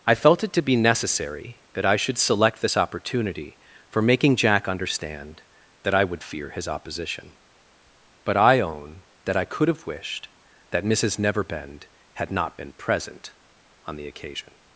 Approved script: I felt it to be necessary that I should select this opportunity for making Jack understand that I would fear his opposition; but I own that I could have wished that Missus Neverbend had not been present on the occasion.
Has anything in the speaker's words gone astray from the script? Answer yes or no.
no